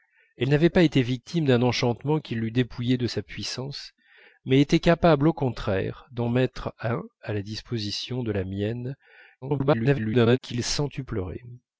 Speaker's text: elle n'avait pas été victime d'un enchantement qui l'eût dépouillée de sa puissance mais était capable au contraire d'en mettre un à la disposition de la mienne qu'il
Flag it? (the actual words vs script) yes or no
yes